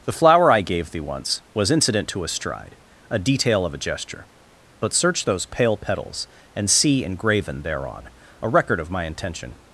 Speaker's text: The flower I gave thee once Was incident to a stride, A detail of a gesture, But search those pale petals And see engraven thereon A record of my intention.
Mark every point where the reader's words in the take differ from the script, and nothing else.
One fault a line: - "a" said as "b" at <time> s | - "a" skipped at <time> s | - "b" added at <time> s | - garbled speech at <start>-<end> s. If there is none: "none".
none